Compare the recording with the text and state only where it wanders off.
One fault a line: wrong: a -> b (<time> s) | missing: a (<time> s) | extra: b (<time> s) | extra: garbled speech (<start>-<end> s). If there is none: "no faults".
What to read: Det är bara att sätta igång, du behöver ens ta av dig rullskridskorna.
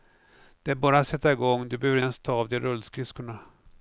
no faults